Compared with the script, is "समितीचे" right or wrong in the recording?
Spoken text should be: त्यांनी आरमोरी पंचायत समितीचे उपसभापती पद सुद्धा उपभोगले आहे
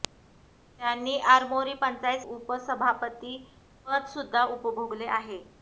wrong